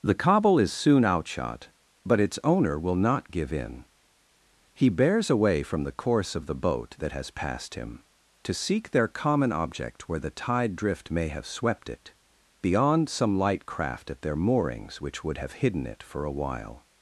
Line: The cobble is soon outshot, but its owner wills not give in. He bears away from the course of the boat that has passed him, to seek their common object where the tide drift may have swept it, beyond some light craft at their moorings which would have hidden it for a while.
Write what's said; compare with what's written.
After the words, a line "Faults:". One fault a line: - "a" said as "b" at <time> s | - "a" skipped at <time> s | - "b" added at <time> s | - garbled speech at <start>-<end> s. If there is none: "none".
The cobble is soon outshot, but its owner will not give in. He bears away from the course of the boat that has passed him, to seek their common object where the tide drift may have swept it, beyond some light craft at their moorings which would have hidden it for a while.
Faults:
- "wills" said as "will" at 2.8 s